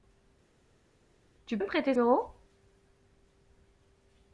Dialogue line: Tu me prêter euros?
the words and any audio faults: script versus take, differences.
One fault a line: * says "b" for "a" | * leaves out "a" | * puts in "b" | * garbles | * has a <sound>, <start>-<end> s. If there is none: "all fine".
all fine